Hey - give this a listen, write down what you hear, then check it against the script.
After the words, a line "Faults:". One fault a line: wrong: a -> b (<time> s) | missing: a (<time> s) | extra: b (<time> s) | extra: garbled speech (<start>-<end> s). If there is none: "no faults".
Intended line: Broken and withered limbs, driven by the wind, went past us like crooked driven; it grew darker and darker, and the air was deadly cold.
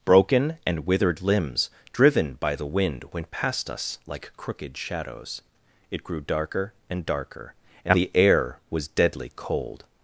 Broken and withered limbs, driven by the wind, went past us like crooked shadows; it grew darker and darker, and the air was deadly cold.
Faults:
wrong: driven -> shadows (4.8 s)